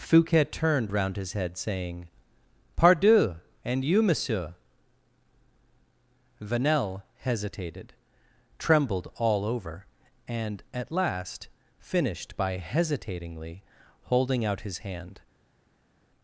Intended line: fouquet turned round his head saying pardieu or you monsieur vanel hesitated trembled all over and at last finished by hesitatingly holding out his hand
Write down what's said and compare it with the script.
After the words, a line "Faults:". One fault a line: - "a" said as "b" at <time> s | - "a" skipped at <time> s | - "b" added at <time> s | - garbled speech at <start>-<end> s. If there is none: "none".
fouquet turned round his head saying pardieu and you monsieur vanel hesitated trembled all over and at last finished by hesitatingly holding out his hand
Faults:
- "or" said as "and" at 3.6 s